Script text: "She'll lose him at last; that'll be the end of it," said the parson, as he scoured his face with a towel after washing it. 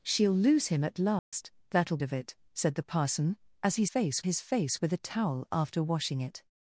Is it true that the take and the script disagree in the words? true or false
true